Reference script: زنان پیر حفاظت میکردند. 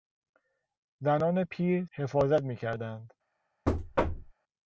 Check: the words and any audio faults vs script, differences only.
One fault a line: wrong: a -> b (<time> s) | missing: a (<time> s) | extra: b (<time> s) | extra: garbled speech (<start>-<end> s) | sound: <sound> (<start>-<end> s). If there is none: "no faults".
sound: thud (3.7-4.3 s)